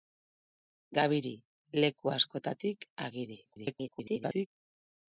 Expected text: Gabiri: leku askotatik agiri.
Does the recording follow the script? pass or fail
fail